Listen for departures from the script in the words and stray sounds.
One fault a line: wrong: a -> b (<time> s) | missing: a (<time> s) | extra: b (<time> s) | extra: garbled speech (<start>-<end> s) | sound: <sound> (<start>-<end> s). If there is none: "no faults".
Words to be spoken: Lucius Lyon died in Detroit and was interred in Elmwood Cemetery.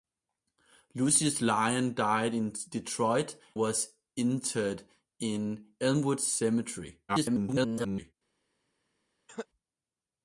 missing: and (3.4 s)
extra: garbled speech (7.1-8.1 s)
sound: cough (9.3-9.5 s)